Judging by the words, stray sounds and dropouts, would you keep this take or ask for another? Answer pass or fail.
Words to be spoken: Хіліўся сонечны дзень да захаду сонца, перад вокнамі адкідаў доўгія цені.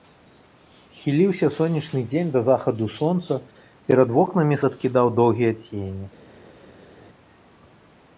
pass